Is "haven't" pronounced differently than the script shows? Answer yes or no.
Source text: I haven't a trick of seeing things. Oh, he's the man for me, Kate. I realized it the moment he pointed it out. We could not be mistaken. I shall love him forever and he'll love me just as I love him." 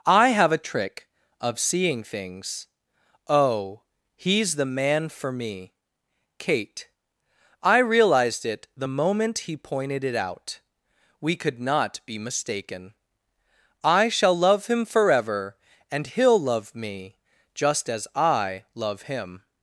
yes